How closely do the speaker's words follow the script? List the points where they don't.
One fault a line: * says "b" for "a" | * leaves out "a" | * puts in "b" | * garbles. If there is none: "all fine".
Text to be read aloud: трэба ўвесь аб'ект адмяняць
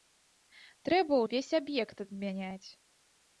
all fine